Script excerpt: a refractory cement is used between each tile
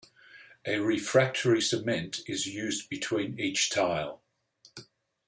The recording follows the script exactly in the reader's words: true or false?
true